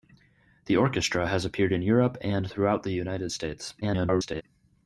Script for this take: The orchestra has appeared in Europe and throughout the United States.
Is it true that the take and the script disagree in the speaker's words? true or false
true